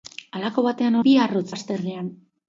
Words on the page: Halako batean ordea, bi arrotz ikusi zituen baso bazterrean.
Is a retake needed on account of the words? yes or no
yes